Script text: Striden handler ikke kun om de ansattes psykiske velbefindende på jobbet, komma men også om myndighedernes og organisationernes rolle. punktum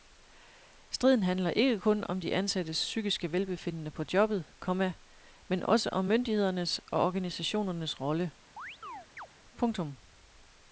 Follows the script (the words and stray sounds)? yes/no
no